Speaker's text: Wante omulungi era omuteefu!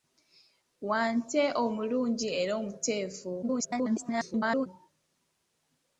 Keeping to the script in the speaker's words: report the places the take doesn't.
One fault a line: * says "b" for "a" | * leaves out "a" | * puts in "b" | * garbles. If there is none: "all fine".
* garbles